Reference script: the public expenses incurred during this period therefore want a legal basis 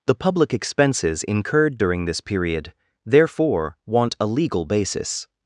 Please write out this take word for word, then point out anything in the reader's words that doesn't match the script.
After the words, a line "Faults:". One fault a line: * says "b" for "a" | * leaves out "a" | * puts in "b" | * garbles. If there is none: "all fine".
the public expenses incurred during this period therefore want a legal basis
Faults:
all fine